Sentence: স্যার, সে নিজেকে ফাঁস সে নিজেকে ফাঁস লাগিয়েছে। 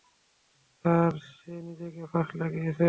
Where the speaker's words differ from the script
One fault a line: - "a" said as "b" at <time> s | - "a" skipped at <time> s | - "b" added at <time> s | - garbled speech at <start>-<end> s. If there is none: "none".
- "সে নিজেকে ফাঁস" skipped at 2.3 s